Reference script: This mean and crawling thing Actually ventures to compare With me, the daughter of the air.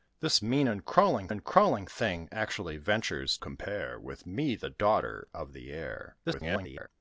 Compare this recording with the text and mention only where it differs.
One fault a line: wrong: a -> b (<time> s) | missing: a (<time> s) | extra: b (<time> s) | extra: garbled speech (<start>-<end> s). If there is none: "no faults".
extra: and crawling (1.3 s)
missing: to (3.4 s)
extra: garbled speech (6.2-6.9 s)